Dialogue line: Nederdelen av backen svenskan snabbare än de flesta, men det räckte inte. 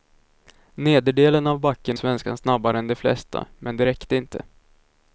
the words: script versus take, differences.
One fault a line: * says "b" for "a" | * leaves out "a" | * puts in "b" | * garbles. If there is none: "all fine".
all fine